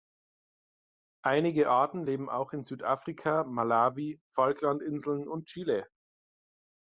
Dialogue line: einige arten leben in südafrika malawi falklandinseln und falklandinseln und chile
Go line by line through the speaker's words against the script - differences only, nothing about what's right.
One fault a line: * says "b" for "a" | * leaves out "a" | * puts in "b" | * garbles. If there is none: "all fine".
* puts in "auch"
* leaves out "falklandinseln und"